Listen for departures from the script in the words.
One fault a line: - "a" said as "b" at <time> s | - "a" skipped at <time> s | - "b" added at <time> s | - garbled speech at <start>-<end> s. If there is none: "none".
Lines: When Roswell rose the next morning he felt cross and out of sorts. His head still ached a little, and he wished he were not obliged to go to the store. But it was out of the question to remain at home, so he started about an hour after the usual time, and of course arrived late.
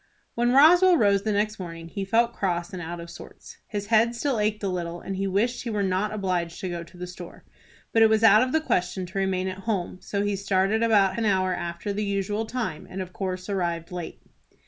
none